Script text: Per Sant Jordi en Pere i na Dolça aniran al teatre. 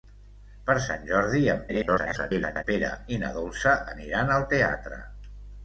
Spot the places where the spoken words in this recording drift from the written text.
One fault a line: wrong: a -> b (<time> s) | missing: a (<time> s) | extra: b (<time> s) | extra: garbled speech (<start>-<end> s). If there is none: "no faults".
extra: garbled speech (1.7-2.6 s)